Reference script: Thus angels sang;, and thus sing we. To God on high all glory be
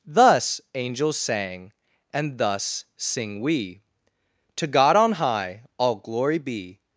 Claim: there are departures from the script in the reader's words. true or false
false